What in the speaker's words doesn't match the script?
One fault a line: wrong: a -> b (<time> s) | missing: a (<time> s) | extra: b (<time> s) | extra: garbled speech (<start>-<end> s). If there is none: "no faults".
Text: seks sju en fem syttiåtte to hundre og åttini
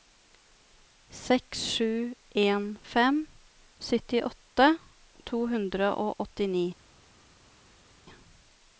no faults